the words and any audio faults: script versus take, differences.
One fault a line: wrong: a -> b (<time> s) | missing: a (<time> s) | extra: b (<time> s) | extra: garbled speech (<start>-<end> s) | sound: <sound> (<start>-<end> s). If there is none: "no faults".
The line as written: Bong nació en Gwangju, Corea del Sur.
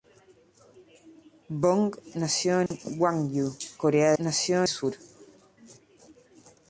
sound: dropout (2.7-2.7 s)
wrong: del -> nació (4.2 s)